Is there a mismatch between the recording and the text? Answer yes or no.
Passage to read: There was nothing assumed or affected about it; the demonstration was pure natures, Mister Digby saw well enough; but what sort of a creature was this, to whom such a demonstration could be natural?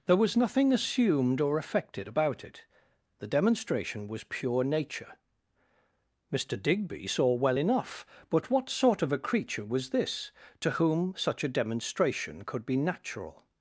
yes